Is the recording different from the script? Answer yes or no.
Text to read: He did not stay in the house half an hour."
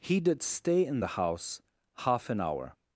yes